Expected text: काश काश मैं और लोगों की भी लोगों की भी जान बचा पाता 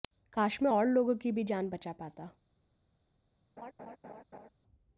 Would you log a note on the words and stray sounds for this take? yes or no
yes